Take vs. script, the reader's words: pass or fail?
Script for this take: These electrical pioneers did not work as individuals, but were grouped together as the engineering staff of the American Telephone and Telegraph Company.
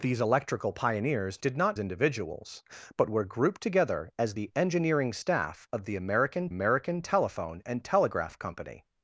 fail